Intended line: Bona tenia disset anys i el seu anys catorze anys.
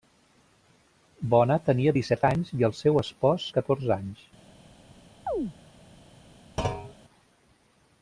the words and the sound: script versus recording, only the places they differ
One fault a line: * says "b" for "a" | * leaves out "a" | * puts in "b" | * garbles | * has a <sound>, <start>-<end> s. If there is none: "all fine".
* says "espòs" for "anys"
* has a chirp, 5.3-5.5 s
* has a thud, 6.6-6.9 s